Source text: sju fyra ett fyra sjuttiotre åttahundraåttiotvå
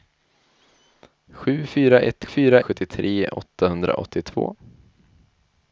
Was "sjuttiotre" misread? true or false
false